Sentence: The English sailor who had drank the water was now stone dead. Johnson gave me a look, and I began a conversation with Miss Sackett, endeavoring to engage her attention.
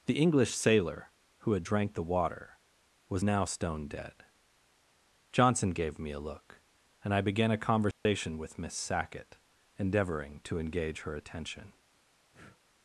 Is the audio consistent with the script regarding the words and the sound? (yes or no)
no